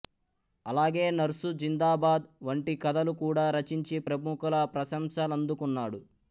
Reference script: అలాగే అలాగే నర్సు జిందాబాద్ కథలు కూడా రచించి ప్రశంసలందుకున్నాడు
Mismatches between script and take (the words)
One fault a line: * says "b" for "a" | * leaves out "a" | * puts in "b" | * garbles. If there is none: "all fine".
* leaves out "అలాగే"
* puts in "వంటి"
* puts in "ప్రముఖుల"